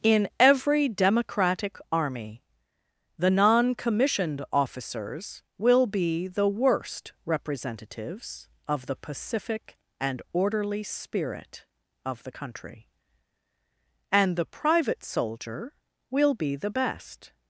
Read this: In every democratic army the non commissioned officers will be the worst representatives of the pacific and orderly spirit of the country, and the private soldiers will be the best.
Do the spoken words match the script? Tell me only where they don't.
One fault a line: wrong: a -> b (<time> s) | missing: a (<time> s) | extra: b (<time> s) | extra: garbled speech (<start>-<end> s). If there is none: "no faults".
wrong: soldiers -> soldier (15.0 s)